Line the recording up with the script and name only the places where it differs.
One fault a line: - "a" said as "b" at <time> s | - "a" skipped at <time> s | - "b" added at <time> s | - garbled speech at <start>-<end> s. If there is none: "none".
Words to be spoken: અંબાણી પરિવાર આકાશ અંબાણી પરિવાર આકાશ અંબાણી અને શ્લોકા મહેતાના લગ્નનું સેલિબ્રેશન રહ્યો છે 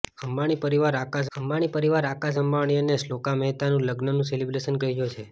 none